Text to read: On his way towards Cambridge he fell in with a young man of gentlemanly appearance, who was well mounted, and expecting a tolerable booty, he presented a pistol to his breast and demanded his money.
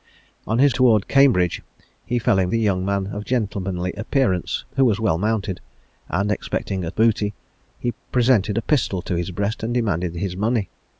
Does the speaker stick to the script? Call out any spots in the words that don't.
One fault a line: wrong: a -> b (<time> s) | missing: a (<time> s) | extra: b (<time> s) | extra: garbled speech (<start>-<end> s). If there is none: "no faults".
missing: way (0.8 s)
missing: with (2.5 s)
missing: tolerable (6.9 s)